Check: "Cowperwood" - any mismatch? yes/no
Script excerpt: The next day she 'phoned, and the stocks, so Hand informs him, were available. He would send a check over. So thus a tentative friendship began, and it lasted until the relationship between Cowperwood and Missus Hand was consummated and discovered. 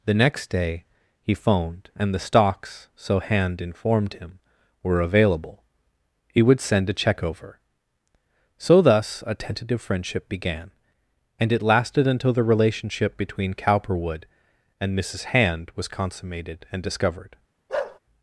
no